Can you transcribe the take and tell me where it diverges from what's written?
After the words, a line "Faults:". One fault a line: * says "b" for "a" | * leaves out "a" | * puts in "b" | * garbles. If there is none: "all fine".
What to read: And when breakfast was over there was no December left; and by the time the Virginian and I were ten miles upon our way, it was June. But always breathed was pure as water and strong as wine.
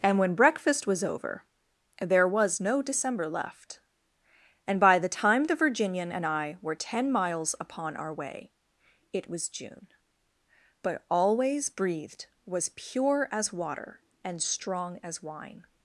And when breakfast was over there was no December left; and by the time the Virginian and I were ten miles upon our way, it was June. But always breathed was pure as water and strong as wine.
Faults:
all fine